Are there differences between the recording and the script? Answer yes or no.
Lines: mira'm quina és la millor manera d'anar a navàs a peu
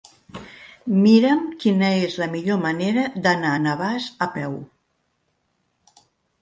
no